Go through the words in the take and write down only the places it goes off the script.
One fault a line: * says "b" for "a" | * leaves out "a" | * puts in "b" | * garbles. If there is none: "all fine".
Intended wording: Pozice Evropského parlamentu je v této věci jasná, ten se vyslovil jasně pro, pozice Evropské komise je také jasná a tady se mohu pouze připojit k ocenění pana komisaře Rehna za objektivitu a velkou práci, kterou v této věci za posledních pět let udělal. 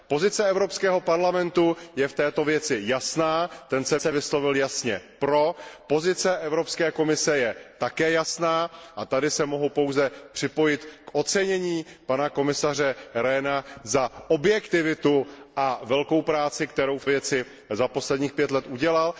* puts in "se"
* leaves out "této"